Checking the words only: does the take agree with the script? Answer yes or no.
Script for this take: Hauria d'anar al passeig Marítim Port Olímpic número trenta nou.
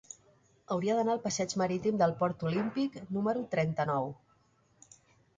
no